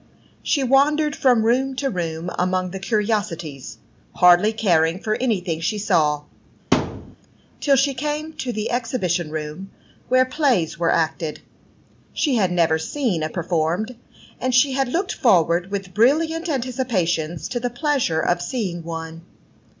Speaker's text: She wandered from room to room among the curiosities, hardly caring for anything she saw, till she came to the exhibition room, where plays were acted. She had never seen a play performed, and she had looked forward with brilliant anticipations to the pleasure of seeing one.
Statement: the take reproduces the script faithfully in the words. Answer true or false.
false